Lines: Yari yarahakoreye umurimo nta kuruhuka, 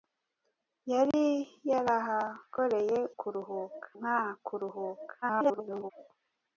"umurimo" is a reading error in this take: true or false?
true